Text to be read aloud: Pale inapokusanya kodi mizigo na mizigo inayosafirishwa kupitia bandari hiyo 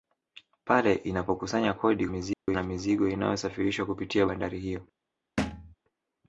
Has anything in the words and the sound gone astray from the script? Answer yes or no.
yes